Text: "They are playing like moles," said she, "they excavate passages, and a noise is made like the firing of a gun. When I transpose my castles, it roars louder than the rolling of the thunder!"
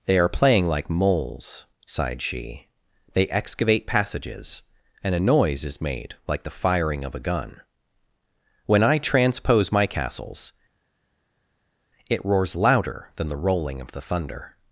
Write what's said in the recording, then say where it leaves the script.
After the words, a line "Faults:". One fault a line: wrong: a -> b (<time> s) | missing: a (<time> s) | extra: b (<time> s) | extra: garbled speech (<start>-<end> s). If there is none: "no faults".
"They are playing like moles," sighed she, "they excavate passages, and a noise is made like the firing of a gun. When I transpose my castles, it roars louder than the rolling of the thunder!"
Faults:
wrong: said -> sighed (1.9 s)